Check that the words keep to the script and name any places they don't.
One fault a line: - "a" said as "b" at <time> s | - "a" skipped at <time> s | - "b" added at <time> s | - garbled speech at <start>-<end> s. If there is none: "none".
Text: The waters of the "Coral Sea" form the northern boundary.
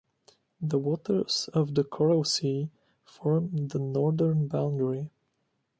none